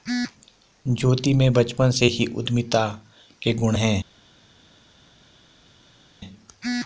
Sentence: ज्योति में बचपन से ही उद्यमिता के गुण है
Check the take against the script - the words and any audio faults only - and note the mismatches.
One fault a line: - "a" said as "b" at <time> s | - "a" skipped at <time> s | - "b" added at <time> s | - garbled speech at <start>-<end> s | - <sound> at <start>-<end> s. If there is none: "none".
none